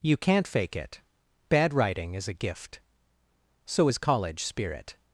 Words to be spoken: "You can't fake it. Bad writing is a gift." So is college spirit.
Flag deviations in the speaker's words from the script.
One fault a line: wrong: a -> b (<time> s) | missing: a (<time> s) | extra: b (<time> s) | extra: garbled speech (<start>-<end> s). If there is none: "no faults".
no faults